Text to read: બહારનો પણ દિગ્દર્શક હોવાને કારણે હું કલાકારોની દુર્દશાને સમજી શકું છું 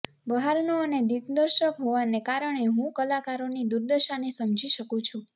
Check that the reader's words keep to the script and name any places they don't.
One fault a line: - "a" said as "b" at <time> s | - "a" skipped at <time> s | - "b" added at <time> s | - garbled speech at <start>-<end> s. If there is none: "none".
- "પણ" said as "અને" at 0.8 s